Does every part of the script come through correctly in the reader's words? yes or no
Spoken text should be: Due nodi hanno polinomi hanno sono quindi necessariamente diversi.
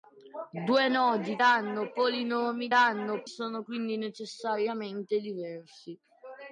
yes